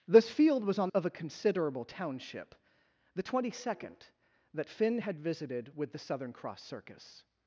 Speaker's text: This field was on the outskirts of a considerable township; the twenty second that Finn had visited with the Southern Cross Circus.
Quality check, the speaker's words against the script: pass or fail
fail